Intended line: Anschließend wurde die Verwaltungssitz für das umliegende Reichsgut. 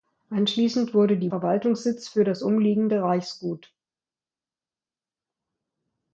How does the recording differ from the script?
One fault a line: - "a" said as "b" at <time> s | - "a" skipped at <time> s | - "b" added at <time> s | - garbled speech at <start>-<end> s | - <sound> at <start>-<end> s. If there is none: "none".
none